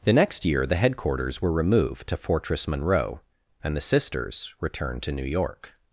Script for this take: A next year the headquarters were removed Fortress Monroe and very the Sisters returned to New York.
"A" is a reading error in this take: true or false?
true